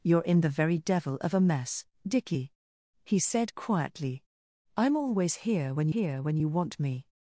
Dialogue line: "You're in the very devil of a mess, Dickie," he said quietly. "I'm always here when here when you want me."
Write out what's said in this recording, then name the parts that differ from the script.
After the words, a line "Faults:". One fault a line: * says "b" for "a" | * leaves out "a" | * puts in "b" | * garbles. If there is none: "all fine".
"You're in the very devil of a mess, Dickie," he said quietly. "I'm always here when here when you want me."
Faults:
all fine